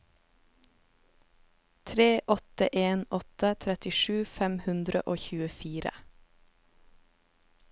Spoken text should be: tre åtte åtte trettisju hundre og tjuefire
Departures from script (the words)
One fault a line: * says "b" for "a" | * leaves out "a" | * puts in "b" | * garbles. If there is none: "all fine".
* puts in "en"
* puts in "fem"